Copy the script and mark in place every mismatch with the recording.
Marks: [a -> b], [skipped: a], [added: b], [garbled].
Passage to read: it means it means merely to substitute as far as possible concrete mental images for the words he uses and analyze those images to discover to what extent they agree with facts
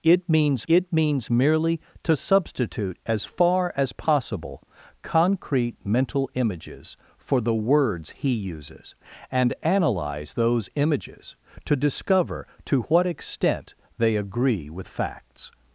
it means it means merely to substitute as far as possible concrete mental images for the words he uses and analyze those images to discover to what extent they agree with facts